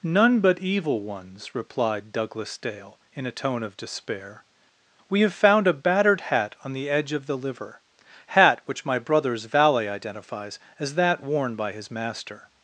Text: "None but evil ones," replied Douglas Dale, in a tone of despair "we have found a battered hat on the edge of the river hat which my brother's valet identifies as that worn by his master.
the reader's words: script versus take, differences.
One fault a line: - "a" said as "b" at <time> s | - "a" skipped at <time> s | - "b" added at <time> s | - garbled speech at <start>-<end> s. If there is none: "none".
- "river" said as "liver" at 7.4 s